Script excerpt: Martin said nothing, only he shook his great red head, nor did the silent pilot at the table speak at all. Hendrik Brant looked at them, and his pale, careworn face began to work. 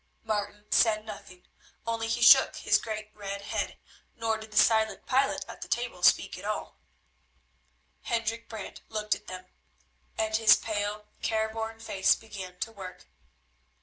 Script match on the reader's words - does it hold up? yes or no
yes